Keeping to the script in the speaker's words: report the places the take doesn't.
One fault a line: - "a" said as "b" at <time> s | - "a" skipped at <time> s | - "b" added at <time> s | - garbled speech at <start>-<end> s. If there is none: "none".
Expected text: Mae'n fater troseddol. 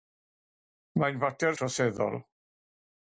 none